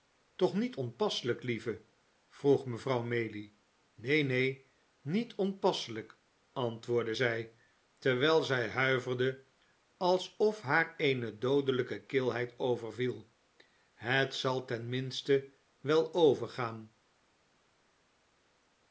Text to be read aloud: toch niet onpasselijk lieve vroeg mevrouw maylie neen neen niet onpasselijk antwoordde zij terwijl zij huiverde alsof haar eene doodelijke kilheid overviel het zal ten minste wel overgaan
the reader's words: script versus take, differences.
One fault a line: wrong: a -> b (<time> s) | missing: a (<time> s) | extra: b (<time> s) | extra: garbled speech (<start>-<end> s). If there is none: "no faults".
no faults